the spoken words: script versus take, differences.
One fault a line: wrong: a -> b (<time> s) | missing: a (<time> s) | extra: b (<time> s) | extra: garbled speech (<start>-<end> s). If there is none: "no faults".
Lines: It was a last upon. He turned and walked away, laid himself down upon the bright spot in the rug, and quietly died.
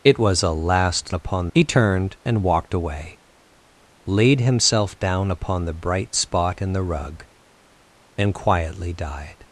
no faults